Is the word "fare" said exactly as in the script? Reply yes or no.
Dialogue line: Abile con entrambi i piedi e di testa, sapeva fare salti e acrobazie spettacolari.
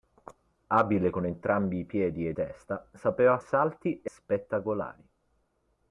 no